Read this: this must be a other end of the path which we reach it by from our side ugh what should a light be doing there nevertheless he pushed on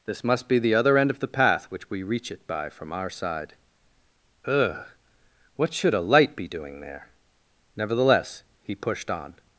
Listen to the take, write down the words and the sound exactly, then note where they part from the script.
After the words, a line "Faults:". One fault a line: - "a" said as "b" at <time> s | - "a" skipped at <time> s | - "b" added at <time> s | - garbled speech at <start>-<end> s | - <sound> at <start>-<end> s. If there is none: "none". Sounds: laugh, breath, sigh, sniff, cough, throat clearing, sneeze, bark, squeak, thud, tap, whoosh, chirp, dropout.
this must be the other end of the path which we reach it by from our side ugh what should a light be doing there nevertheless he pushed on
Faults:
- "a" said as "the" at 0.6 s